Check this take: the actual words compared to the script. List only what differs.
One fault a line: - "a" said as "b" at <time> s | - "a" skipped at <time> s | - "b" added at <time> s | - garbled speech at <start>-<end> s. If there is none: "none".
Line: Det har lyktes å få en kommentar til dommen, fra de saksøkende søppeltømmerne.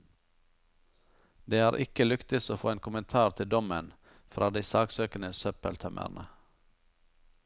- "ikke" added at 1.8 s